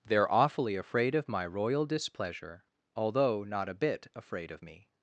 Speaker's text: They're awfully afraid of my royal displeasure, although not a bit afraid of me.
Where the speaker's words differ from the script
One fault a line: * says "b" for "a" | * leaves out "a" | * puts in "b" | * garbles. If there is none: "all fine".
all fine